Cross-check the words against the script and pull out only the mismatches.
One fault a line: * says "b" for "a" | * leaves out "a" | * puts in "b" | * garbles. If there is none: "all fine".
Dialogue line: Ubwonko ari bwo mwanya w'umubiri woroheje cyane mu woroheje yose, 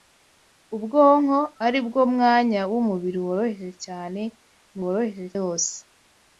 all fine